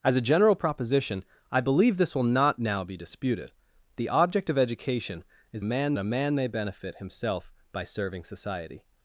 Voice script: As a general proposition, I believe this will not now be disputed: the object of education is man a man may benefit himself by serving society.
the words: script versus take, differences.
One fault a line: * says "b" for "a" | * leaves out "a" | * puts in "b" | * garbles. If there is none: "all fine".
all fine